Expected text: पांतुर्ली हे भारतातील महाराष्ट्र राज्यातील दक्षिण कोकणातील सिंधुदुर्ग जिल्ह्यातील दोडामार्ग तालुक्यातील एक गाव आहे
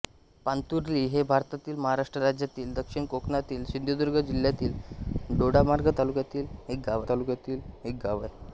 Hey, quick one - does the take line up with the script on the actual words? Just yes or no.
no